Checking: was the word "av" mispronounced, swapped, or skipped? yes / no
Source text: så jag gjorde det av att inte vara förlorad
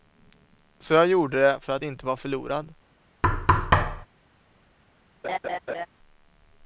yes